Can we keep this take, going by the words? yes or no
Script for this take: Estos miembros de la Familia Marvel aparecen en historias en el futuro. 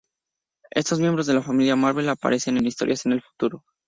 yes